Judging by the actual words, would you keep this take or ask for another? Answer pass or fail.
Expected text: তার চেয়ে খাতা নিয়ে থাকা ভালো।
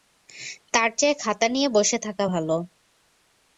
fail